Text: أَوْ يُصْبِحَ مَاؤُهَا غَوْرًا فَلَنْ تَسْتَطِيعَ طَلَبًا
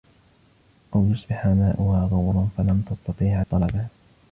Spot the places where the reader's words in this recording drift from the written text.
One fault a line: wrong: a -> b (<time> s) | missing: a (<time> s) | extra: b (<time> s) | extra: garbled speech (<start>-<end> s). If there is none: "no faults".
no faults